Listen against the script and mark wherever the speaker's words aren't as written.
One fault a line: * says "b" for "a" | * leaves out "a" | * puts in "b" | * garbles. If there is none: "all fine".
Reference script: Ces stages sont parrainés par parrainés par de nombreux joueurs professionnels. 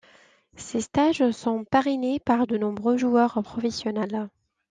* leaves out "parrainés par"